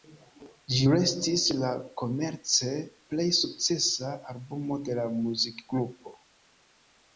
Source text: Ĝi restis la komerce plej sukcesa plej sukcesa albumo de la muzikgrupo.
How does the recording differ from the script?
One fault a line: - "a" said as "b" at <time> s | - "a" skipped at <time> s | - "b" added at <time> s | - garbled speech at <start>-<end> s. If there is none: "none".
- "plej sukcesa" skipped at 4.1 s